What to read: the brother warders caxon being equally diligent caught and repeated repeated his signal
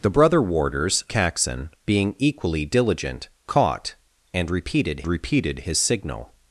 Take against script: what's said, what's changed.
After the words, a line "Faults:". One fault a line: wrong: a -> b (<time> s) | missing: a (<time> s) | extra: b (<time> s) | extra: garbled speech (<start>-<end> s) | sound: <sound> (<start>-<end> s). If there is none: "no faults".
the brother warders caxon being equally diligent caught and repeated repeated his signal
Faults:
no faults